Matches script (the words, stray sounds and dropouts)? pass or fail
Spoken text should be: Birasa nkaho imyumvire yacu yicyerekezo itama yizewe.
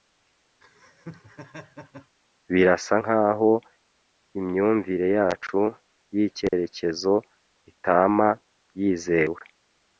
fail